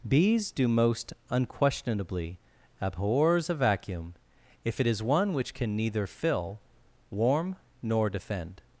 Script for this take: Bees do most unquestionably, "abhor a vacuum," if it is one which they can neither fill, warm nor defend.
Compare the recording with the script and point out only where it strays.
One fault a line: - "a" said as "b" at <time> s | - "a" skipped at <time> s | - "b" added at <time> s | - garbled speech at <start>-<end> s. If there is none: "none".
- "abhor" said as "abhors" at 2.8 s
- "they" skipped at 5.5 s